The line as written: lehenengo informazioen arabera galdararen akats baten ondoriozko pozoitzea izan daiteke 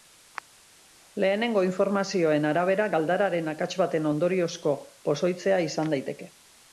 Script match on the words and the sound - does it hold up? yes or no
yes